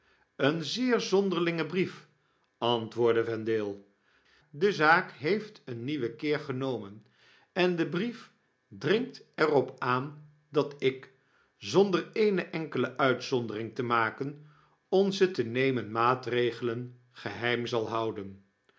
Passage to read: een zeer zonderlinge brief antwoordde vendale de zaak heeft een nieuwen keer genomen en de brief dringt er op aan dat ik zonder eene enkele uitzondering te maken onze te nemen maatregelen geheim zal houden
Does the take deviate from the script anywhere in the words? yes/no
no